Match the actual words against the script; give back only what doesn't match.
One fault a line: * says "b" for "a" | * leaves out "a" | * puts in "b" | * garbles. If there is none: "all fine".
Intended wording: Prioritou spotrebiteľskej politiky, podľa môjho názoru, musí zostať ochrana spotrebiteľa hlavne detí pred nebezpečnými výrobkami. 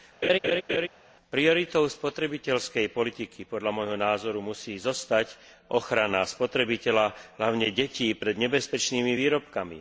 all fine